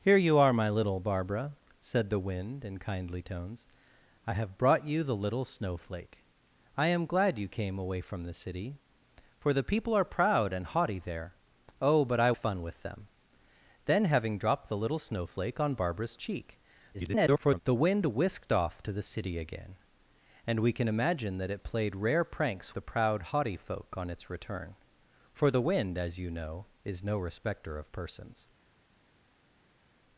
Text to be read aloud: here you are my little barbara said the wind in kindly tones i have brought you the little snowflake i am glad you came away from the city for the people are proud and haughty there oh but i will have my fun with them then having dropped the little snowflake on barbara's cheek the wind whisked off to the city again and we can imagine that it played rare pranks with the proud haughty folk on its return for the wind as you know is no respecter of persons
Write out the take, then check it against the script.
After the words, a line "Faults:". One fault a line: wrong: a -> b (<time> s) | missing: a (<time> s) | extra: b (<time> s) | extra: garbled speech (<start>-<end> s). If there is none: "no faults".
here you are my little barbara said the wind in kindly tones i have brought you the little snowflake i am glad you came away from the city for the people are proud and haughty there oh but i fun with them then having dropped the little snowflake on barbara's cheek [garbled] the wind whisked off to the city again and we can imagine that it played rare pranks the proud haughty folk on its return for the wind as you know is no respecter of persons
Faults:
missing: will have my (12.3 s)
extra: garbled speech (16.9-17.6 s)
missing: with (22.7 s)